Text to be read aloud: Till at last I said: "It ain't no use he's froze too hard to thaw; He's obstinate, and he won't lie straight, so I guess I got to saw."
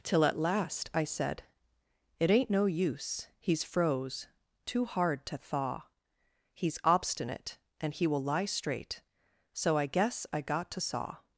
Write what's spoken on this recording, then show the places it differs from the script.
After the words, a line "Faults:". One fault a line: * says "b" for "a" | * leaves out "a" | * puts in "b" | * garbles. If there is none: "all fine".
Till at last I said: "It ain't no use he's froze too hard to thaw; He's obstinate, and he will lie straight, so I guess I got to saw."
Faults:
* says "will" for "won't"